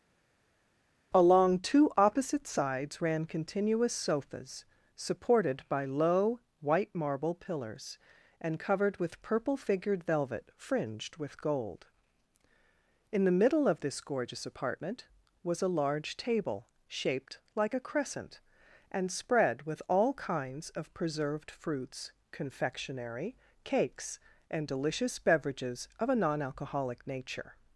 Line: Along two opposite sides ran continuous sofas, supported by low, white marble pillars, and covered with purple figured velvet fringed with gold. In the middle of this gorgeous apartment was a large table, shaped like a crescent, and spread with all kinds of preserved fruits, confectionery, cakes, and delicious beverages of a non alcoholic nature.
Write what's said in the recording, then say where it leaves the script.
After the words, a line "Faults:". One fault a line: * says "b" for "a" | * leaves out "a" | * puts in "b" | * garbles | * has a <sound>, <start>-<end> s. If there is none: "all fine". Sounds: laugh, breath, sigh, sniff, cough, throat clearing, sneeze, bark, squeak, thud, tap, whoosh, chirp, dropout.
Along two opposite sides ran continuous sofas, supported by low, white marble pillars, and covered with purple figured velvet fringed with gold. In the middle of this gorgeous apartment was a large table, shaped like a crescent, and spread with all kinds of preserved fruits, confectionery, cakes, and delicious beverages of a non alcoholic nature.
Faults:
all fine